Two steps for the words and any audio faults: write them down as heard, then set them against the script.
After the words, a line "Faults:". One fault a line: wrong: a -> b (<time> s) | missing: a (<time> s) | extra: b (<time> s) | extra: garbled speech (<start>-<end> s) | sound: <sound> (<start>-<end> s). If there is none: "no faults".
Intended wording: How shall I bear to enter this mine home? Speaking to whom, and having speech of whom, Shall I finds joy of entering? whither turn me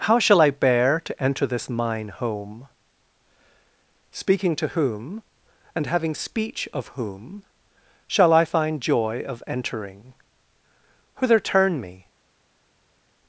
How shall I bear to enter this mine home? Speaking to whom, and having speech of whom, Shall I find joy of entering? whither turn me
Faults:
wrong: finds -> find (8.4 s)